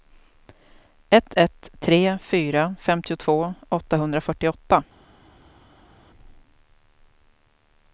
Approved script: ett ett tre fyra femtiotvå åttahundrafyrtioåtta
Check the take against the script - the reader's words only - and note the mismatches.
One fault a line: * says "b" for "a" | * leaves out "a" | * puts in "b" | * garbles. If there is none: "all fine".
all fine